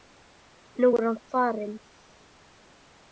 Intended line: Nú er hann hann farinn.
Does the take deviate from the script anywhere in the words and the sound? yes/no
yes